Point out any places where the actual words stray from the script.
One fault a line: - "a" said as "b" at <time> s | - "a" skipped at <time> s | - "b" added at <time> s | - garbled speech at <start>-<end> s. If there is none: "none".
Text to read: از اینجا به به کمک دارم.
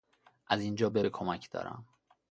none